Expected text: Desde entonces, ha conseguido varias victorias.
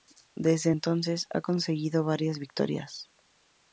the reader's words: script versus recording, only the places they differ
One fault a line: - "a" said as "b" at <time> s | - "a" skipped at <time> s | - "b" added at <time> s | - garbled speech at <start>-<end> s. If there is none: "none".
none